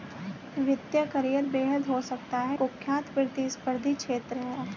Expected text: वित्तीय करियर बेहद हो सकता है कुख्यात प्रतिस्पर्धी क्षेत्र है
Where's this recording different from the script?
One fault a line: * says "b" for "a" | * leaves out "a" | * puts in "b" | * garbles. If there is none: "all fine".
all fine